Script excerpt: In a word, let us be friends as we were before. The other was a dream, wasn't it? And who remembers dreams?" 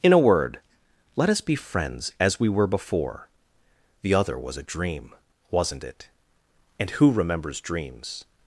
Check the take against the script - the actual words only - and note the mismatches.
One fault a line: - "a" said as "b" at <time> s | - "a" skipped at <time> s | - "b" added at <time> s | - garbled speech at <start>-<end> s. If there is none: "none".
none